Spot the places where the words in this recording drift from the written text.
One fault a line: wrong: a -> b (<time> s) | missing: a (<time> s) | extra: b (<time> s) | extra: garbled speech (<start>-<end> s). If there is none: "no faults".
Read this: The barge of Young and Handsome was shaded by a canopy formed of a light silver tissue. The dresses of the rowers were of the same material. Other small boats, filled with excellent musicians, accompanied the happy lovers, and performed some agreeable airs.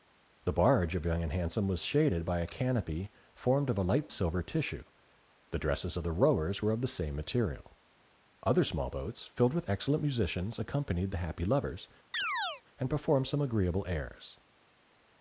no faults